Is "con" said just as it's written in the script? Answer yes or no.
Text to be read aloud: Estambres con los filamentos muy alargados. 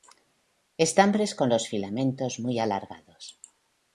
yes